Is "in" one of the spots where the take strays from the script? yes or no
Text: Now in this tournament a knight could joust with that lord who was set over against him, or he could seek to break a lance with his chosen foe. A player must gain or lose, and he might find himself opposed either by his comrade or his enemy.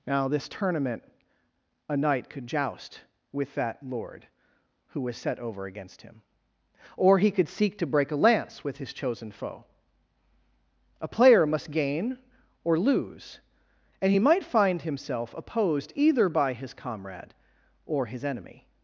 yes